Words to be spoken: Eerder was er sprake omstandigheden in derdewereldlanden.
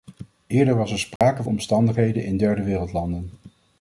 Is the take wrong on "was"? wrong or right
right